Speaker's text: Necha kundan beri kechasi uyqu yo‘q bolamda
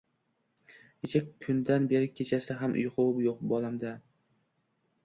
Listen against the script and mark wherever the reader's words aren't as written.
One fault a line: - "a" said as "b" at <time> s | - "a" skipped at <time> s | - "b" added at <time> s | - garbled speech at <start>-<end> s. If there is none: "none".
- "ham" added at 2.6 s